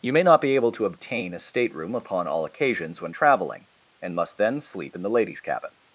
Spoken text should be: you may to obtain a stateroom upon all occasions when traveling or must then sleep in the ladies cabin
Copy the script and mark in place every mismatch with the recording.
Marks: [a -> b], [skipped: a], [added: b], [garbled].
you may [added: not be able] to obtain a stateroom upon all occasions when traveling [or -> and] must then sleep in the ladies cabin